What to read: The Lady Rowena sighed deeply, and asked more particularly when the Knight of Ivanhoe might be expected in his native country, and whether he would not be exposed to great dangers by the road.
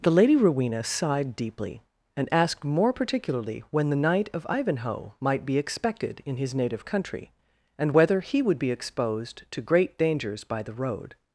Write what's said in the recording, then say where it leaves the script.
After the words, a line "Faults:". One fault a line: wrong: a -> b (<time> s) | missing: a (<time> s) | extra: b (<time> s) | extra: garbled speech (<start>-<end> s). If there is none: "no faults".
The Lady Rowena sighed deeply, and asked more particularly when the Knight of Ivanhoe might be expected in his native country, and whether he would be exposed to great dangers by the road.
Faults:
missing: not (8.6 s)